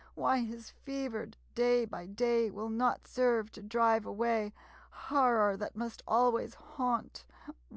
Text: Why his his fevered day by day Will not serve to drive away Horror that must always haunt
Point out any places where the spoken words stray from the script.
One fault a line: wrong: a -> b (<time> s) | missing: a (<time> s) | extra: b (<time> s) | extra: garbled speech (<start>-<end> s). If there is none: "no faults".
missing: his (0.7 s)